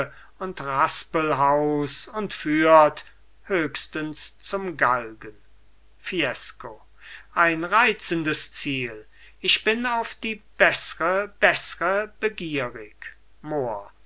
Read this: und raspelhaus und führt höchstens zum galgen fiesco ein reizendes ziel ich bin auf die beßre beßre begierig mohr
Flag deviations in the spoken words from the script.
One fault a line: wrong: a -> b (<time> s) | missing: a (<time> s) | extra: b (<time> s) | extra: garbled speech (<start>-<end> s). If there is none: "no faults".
no faults